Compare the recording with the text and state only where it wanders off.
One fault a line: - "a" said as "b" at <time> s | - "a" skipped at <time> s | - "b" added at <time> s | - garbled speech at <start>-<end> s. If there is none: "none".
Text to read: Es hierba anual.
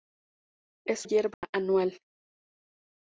none